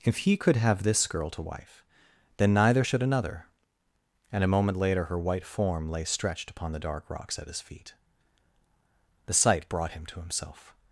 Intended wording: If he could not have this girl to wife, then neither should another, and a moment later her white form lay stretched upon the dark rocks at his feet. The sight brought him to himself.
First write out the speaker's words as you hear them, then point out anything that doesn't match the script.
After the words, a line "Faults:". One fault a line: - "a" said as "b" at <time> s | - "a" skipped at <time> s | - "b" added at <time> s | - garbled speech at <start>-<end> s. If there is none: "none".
If he could have this girl to wife, then neither should another, and a moment later her white form lay stretched upon the dark rocks at his feet. The sight brought him to himself.
Faults:
- "not" skipped at 0.6 s